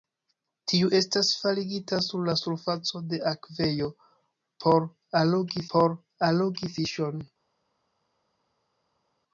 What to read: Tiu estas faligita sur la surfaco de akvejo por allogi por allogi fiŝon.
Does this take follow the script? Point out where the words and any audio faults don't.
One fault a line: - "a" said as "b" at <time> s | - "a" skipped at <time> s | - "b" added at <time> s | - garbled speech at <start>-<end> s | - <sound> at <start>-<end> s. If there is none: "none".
none